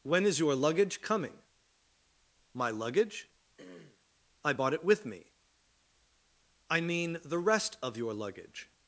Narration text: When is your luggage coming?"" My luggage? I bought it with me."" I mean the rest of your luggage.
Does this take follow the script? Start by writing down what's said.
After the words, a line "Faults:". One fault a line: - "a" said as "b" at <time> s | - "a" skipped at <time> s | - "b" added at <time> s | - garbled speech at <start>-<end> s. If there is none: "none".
When is your luggage coming?"" My luggage? I bought it with me."" I mean the rest of your luggage.
Faults:
none